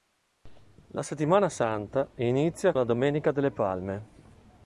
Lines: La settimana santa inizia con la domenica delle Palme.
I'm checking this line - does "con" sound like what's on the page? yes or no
no